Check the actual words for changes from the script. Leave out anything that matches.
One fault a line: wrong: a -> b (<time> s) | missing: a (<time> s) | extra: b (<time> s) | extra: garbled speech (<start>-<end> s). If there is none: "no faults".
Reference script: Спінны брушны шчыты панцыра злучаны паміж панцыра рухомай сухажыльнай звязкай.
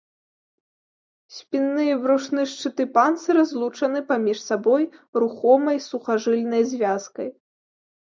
extra: і (1.9 s)
wrong: панцыра -> сабой (4.5 s)